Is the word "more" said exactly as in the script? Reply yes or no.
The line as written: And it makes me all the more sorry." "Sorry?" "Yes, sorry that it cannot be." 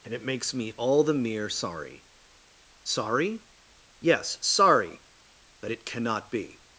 no